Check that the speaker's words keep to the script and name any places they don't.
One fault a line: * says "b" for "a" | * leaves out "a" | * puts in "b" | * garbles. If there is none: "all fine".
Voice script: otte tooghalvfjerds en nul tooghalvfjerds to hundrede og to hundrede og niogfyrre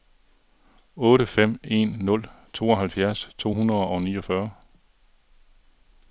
* says "fem" for "tooghalvfjerds"
* leaves out "to hundrede og"